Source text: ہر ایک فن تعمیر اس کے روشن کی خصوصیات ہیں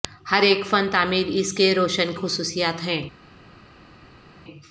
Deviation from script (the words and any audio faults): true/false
true